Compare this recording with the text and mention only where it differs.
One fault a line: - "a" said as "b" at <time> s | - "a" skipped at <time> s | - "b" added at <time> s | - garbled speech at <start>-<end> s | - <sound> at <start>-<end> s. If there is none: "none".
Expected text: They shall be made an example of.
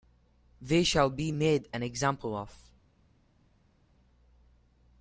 none